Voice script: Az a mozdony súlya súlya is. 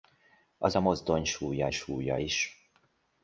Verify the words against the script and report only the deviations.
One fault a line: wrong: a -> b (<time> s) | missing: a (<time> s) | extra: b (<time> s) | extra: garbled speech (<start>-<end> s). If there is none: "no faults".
no faults